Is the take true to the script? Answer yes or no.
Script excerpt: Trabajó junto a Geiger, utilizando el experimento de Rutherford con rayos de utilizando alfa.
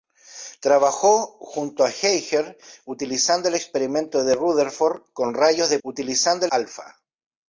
yes